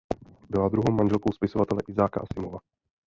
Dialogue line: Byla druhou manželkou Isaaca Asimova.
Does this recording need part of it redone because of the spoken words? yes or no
yes